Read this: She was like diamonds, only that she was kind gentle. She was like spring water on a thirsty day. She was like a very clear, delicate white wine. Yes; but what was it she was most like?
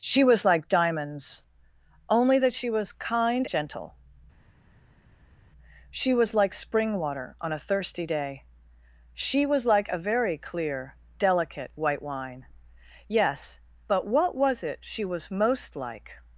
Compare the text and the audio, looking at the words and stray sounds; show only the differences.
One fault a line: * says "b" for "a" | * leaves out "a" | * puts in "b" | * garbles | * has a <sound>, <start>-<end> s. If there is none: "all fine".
all fine